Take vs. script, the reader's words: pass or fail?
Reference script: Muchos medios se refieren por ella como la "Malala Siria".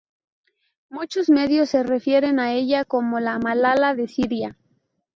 fail